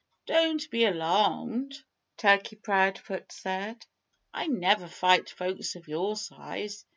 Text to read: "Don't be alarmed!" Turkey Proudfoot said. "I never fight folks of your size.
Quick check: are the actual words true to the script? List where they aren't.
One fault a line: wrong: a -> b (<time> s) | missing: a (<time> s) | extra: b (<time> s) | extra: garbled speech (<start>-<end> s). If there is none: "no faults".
no faults